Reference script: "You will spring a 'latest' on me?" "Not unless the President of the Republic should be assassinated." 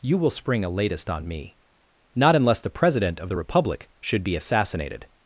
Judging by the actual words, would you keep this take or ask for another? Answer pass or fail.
pass